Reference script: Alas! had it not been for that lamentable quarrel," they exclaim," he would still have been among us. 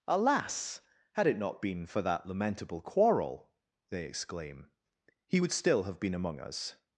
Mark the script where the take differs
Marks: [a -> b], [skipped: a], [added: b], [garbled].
Alas! had it not been for that lamentable quarrel," they exclaim," he would still have been among us.